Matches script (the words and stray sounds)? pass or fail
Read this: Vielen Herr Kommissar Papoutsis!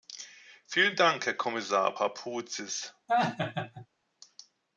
fail